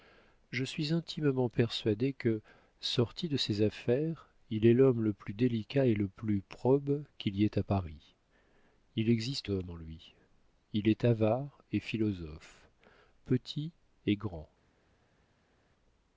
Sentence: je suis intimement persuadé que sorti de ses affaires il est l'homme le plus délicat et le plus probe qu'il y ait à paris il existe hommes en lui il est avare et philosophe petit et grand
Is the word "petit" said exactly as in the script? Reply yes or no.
yes